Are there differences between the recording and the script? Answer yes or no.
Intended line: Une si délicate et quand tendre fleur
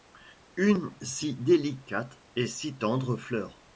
yes